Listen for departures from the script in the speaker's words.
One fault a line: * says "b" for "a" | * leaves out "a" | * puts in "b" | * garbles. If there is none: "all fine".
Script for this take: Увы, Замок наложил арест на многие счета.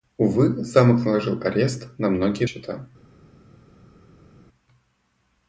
all fine